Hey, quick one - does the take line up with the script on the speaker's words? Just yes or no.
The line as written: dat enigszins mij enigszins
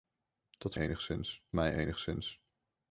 yes